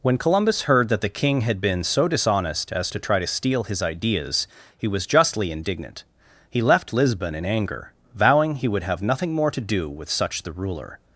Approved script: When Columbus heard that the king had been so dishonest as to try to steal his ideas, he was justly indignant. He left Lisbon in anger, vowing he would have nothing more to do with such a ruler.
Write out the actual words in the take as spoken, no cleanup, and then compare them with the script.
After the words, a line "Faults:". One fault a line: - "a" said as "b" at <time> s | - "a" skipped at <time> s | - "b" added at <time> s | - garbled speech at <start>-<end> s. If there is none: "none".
When Columbus heard that the king had been so dishonest as to try to steal his ideas, he was justly indignant. He left Lisbon in anger, vowing he would have nothing more to do with such the ruler.
Faults:
- "a" said as "the" at 10.4 s